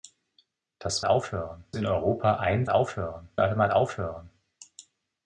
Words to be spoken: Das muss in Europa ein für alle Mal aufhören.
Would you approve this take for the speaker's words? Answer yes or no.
no